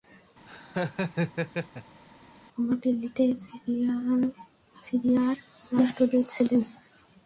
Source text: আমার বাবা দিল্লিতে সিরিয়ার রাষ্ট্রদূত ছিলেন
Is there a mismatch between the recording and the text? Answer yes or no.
yes